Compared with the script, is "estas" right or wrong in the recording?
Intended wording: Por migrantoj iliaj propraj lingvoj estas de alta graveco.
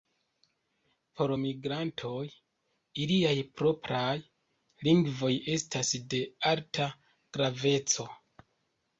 right